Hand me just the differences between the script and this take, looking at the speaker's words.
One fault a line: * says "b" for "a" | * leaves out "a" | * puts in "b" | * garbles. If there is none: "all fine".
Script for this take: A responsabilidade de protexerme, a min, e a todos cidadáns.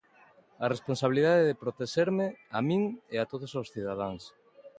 * puts in "os"